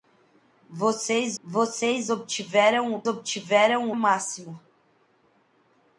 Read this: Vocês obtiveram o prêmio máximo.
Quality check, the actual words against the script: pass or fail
fail